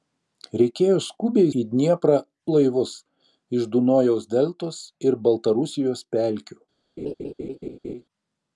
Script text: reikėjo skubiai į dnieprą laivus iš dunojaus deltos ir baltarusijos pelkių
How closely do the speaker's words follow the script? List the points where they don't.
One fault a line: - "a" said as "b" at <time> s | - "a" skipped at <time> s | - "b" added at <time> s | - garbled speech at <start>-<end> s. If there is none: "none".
none